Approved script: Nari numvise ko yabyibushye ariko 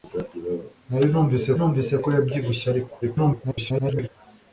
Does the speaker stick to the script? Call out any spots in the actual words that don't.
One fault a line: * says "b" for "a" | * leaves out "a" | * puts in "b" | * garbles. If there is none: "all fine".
* puts in "numvise"
* garbles